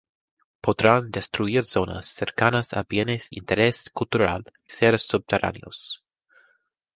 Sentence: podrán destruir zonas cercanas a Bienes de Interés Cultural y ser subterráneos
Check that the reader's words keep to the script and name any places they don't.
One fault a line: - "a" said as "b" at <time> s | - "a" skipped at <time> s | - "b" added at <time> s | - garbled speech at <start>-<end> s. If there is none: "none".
- "de" skipped at 3.3 s
- "y" skipped at 4.5 s